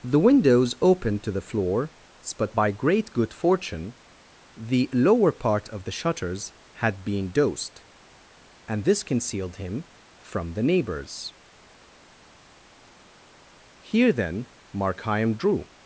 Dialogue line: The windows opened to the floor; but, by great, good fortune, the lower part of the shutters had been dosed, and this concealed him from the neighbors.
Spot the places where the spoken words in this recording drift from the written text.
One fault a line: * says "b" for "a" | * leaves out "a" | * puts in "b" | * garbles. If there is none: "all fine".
* puts in "Here then Markheim drew"